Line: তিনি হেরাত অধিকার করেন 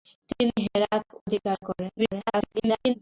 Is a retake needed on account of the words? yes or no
yes